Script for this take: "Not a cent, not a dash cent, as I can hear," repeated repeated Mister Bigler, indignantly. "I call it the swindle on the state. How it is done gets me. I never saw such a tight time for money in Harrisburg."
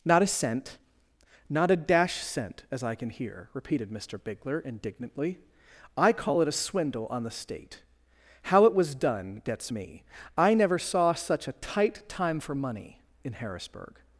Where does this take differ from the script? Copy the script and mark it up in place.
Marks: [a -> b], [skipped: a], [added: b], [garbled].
"Not a cent, not a dash cent, as I can hear," repeated [skipped: repeated] Mister Bigler, indignantly. "I call it [the -> a] swindle on the state. How it [is -> was] done gets me. I never saw such a tight time for money in Harrisburg."